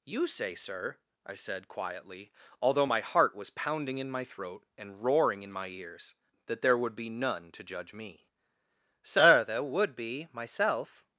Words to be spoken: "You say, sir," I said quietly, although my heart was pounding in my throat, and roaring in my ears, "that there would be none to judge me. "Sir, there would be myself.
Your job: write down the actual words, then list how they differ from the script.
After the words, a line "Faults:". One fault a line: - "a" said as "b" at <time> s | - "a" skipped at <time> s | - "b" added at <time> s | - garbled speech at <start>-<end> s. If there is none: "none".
"You say, sir," I said quietly, although my heart was pounding in my throat, and roaring in my ears, "that there would be none to judge me. "Sir, there would be myself.
Faults:
none